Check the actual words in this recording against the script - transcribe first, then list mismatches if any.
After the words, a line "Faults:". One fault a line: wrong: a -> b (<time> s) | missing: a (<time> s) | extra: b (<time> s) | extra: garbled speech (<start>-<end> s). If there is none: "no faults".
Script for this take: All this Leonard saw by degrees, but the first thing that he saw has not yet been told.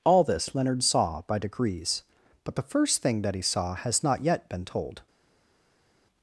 All this Leonard saw by degrees, but the first thing that he saw has not yet been told.
Faults:
no faults